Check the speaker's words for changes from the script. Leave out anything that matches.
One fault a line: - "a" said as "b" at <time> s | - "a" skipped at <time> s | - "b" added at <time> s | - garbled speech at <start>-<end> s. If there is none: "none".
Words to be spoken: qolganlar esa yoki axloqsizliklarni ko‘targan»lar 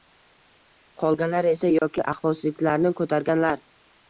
none